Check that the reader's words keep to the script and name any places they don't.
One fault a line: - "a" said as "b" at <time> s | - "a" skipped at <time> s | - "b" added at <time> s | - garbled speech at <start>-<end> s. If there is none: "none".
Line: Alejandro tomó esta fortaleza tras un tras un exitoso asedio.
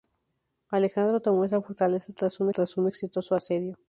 none